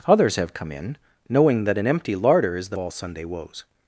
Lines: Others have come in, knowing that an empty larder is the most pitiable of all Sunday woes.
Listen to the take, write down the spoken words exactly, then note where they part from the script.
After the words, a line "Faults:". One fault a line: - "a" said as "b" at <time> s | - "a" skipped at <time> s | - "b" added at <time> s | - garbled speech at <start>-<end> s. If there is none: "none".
Others have come in, knowing that an empty larder is the all Sunday woes.
Faults:
- "most pitiable of" skipped at 2.8 s